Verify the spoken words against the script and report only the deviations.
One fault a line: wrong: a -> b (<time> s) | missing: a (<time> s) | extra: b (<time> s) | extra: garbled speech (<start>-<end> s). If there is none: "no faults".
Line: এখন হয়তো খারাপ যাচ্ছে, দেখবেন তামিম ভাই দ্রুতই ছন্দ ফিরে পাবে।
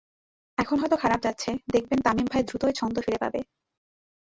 no faults